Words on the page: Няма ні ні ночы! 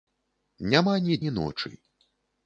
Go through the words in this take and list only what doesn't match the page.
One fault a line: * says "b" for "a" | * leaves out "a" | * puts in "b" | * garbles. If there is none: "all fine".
all fine